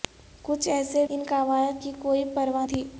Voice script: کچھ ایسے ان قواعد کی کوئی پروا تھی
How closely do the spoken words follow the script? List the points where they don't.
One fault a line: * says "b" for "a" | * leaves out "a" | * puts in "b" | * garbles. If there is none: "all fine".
all fine